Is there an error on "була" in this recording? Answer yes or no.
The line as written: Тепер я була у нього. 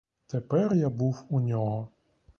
yes